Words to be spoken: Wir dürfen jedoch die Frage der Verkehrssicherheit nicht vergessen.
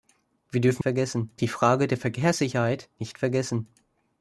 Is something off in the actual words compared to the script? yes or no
yes